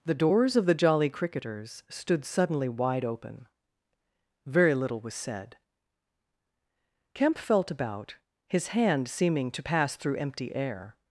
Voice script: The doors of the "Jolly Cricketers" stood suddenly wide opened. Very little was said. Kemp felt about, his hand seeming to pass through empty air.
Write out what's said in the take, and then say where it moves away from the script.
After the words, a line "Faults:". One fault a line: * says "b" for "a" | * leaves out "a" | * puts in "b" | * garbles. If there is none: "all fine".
The doors of the "Jolly Cricketers" stood suddenly wide open. Very little was said. Kemp felt about, his hand seeming to pass through empty air.
Faults:
* says "open" for "opened"